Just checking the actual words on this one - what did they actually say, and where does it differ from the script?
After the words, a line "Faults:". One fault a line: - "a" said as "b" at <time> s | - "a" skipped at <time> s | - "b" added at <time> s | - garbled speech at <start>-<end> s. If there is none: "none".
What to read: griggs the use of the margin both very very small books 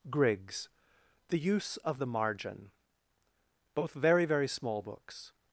griggs the use of the margin both very very small books
Faults:
none